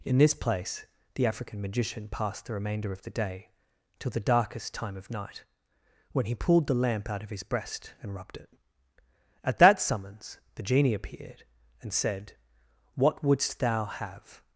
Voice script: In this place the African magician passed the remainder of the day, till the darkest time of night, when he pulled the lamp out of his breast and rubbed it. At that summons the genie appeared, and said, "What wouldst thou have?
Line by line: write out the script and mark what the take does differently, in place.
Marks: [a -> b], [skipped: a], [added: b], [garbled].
In this place the African magician passed the remainder of the day, till the darkest time of night, when he pulled the lamp out of his breast and rubbed it. At that summons the genie appeared, and said, "What wouldst thou have?